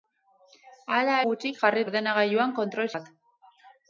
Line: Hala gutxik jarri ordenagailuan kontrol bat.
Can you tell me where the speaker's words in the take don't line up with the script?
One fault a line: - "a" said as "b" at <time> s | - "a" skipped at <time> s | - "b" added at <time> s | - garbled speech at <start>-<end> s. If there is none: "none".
none